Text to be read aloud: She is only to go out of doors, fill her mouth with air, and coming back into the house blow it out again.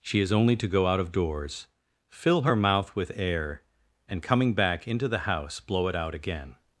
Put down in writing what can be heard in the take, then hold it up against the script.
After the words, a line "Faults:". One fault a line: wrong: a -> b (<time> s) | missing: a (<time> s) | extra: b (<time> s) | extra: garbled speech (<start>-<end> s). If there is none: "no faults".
She is only to go out of doors, fill her mouth with air, and coming back into the house blow it out again.
Faults:
no faults